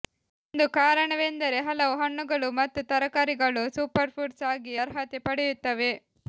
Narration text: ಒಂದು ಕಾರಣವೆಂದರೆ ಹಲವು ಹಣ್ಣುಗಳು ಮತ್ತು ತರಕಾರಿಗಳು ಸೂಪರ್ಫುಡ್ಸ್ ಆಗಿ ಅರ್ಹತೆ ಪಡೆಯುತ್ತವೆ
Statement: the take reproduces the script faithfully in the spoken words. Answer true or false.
true